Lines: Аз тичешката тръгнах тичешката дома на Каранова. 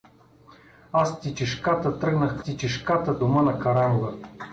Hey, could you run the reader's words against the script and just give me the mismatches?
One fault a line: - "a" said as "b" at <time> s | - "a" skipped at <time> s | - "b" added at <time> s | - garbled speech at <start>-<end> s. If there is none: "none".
none